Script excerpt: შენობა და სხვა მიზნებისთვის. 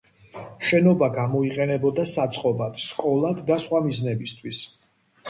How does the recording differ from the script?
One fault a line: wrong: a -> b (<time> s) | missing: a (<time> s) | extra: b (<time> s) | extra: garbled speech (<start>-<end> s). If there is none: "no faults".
extra: გამოიყენებოდა საწყობად სკოლად (1.2 s)